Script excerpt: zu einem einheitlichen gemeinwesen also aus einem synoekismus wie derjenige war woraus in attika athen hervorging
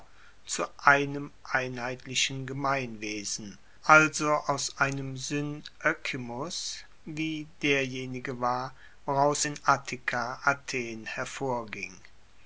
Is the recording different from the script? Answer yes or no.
no